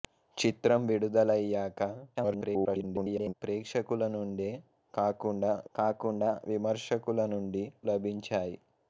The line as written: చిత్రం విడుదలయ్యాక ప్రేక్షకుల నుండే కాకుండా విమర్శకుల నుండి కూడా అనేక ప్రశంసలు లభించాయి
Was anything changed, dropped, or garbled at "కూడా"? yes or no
yes